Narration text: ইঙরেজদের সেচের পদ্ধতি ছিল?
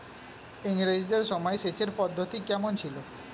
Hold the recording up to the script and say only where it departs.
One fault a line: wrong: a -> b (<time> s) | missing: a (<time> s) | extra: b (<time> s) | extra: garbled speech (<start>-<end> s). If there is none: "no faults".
extra: সময় (1.2 s)
extra: কমন (2.5 s)